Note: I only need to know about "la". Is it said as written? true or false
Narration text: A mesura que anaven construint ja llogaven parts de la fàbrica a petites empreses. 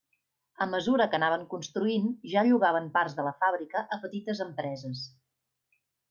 true